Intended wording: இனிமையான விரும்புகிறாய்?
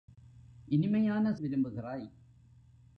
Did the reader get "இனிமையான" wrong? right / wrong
right